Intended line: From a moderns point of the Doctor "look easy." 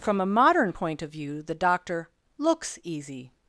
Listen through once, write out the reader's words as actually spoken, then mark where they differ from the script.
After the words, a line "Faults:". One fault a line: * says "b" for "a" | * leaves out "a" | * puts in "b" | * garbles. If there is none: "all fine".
From a modern point of view the Doctor "looks easy."
Faults:
* says "modern" for "moderns"
* puts in "view"
* says "looks" for "look"